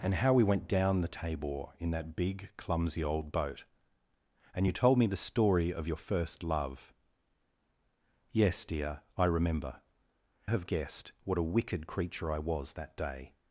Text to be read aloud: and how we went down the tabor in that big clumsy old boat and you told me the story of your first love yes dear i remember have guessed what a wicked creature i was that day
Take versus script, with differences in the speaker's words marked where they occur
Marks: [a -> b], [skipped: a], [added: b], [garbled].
and how we went down the tabor in that big clumsy old boat and you told me the story of your first love yes dear i remember have guessed what a wicked creature i was that day